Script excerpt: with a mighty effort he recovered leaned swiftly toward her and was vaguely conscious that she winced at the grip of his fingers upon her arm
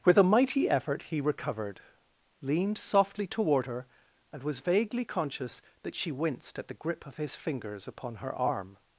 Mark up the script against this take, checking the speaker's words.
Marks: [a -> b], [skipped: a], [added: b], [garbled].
with a mighty effort he recovered leaned [swiftly -> softly] toward her and was vaguely conscious that she winced at the grip of his fingers upon her arm